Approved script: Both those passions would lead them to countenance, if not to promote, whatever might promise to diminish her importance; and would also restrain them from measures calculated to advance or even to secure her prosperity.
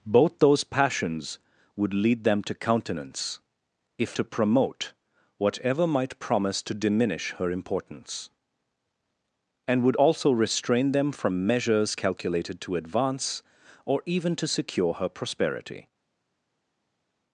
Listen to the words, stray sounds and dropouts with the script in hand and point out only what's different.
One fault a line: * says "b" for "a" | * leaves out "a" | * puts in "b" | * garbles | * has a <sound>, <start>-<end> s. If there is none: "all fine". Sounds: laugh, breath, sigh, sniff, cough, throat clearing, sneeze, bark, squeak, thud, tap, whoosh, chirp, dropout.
* leaves out "not"